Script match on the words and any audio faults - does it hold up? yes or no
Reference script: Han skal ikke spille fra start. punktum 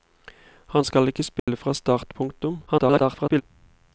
no